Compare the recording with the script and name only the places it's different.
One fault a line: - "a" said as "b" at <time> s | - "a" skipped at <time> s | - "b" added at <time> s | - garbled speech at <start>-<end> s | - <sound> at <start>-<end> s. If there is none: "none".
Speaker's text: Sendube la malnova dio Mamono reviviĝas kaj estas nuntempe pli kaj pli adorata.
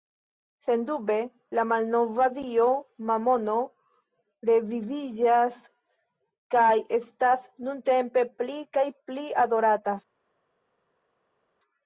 none